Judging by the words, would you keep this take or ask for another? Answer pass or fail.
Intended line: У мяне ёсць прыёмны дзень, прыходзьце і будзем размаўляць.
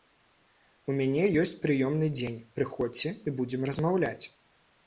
pass